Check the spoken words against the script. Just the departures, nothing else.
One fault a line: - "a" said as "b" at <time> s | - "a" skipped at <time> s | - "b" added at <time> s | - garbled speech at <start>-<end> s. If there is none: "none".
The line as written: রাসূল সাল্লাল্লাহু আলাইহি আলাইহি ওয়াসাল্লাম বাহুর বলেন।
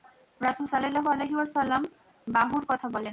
- "আলাইহি" skipped at 1.3 s
- "কথা" added at 2.7 s